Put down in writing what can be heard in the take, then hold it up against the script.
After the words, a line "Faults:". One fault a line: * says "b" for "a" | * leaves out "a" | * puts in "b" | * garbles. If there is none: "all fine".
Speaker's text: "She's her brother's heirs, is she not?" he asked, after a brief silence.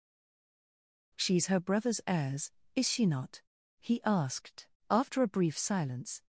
"She's her brother's heirs, is she not?" he asked, after a brief silence.
Faults:
all fine